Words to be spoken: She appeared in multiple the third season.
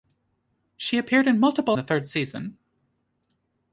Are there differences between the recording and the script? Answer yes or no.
no